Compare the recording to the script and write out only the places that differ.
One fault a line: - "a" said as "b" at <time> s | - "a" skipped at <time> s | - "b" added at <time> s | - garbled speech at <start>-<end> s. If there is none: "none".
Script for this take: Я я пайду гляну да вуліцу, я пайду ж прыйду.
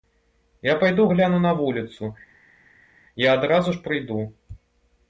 - "я" skipped at 0.8 s
- "да" said as "на" at 1.4 s
- "пайду" said as "адразу" at 3.3 s